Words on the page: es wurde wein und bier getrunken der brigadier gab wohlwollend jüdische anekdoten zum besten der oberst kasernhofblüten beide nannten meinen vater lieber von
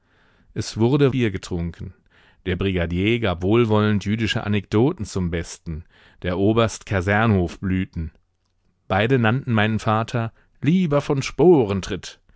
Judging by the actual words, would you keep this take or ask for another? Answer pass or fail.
fail